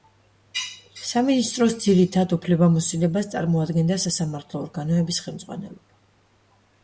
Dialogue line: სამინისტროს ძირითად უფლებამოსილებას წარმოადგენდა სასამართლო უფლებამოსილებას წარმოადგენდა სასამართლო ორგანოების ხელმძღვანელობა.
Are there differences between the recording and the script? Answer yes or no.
yes